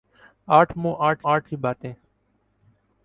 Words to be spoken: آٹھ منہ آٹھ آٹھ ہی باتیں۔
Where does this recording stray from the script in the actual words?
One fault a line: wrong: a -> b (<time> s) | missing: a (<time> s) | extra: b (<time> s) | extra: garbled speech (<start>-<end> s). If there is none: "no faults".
no faults